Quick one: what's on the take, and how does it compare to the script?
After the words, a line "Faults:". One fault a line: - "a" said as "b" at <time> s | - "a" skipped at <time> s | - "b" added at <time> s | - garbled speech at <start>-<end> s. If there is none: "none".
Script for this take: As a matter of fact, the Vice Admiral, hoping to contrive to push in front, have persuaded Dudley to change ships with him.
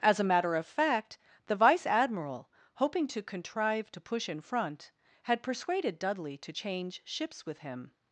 As a matter of fact, the Vice Admiral, hoping to contrive to push in front, had persuaded Dudley to change ships with him.
Faults:
- "have" said as "had" at 5.2 s